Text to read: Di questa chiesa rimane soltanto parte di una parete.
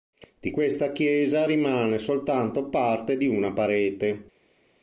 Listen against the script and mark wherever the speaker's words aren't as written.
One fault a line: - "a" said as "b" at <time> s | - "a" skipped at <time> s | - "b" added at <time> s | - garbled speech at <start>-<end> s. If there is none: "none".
none